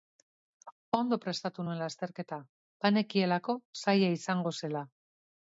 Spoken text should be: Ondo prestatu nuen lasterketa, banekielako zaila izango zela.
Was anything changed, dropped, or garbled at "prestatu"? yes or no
no